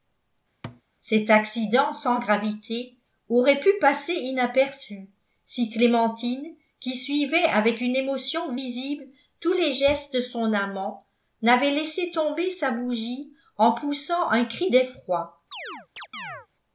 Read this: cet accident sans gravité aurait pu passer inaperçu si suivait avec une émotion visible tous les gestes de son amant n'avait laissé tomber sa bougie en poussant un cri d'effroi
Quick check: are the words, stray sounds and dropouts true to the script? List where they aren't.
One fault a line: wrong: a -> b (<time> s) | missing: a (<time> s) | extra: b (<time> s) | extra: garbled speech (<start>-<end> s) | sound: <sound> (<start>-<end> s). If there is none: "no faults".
sound: thud (0.6-0.8 s)
extra: clémentine qui (5.7 s)
sound: chirp (15.5-16.5 s)